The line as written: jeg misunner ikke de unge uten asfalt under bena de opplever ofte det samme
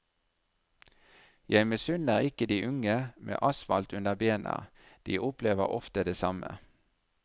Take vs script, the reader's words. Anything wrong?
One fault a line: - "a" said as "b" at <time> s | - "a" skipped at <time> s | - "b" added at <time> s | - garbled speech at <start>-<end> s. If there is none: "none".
- "uten" said as "med" at 3.2 s